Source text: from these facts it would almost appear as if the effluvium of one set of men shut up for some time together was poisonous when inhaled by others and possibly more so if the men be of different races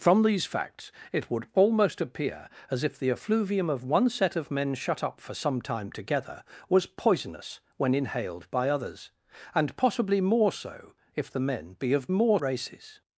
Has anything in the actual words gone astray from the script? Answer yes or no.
yes